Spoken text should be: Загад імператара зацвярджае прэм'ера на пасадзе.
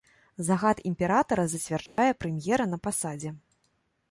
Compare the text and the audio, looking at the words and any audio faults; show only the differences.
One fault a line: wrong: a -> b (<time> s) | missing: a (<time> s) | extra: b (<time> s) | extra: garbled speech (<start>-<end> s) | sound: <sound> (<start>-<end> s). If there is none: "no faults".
sound: dropout (1.9-2.0 s)